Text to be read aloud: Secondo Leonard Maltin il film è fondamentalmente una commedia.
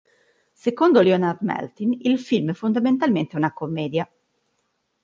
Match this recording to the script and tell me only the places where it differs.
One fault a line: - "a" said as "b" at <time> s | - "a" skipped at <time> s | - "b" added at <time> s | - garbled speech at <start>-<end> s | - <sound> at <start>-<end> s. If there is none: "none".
none